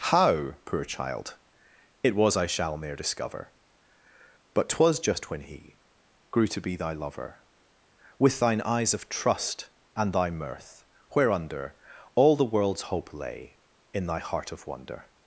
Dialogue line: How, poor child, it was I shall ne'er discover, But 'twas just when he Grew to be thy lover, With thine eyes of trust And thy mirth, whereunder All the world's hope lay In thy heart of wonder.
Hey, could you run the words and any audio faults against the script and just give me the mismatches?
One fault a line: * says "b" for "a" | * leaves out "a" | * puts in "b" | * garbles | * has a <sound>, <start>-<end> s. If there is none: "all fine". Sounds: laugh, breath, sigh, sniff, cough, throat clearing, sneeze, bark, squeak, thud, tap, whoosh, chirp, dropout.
all fine